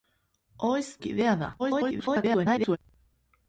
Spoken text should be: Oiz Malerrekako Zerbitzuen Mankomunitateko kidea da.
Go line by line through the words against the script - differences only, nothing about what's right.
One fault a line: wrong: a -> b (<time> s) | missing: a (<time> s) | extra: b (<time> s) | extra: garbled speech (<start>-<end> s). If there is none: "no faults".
missing: Malerrekako Zerbitzuen Mankomunitateko (0.8 s)
extra: garbled speech (1.6-2.8 s)